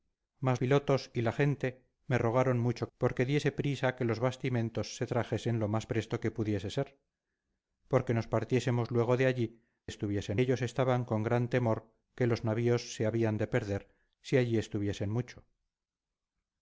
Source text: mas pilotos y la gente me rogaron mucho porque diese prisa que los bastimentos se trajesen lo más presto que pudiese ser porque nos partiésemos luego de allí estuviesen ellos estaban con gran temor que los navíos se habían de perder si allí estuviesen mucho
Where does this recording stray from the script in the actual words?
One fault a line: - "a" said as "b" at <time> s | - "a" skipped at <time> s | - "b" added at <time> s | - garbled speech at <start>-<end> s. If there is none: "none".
none